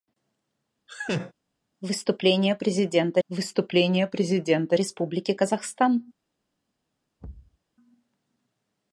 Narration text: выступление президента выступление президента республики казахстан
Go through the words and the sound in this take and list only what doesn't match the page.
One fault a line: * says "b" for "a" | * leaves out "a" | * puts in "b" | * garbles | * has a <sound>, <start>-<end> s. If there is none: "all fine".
* has a laugh, 0.9-1.3 s
* has a thud, 7.2-7.6 s